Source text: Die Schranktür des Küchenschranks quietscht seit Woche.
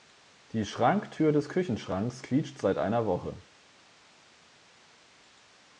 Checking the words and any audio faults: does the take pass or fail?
fail